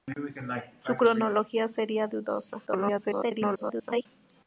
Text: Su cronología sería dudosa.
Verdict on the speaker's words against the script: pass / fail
fail